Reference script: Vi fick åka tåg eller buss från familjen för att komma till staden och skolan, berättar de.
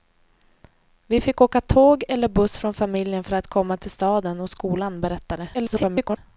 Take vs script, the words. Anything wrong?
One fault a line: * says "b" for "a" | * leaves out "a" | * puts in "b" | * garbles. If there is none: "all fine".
* garbles